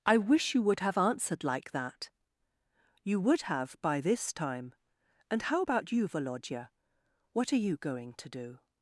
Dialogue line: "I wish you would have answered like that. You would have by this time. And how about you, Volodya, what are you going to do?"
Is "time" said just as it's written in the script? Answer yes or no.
yes